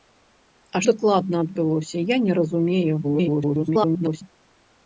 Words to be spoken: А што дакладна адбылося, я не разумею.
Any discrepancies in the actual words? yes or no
yes